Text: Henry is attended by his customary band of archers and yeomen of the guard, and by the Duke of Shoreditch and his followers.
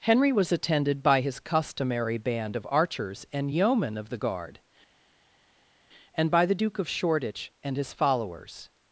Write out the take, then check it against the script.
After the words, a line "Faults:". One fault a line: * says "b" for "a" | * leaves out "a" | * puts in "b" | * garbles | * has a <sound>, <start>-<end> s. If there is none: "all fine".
Henry was attended by his customary band of archers and yeomen of the guard, and by the Duke of Shoreditch and his followers.
Faults:
* says "was" for "is"